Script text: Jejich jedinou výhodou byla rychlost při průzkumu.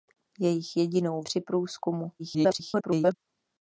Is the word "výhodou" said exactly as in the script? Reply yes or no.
no